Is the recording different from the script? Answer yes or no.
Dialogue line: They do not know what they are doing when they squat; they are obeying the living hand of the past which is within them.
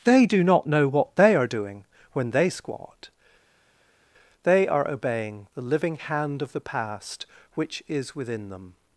no